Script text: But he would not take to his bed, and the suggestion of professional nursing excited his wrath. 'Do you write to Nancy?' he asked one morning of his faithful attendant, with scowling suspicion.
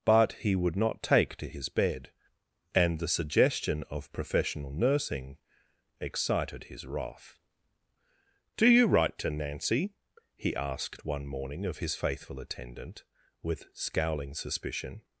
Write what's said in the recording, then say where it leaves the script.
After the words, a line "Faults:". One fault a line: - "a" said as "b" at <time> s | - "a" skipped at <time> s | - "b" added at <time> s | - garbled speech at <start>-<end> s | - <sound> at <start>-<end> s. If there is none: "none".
But he would not take to his bed, and the suggestion of professional nursing excited his wrath. 'Do you write to Nancy?' he asked one morning of his faithful attendant, with scowling suspicion.
Faults:
none